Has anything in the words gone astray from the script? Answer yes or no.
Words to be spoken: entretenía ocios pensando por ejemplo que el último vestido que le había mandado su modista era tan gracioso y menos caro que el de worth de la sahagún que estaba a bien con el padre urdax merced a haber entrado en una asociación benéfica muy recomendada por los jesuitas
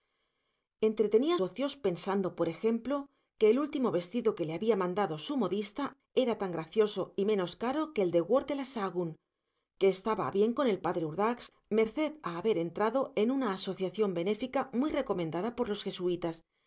no